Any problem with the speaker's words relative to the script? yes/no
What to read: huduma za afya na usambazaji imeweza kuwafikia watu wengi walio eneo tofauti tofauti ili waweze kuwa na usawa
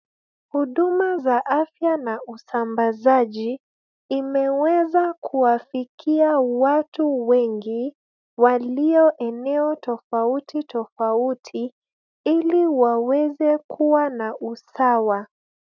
no